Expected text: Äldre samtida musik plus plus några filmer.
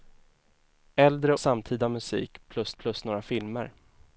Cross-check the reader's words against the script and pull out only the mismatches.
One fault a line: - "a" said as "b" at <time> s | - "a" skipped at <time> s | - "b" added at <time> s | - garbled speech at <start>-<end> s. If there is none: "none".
none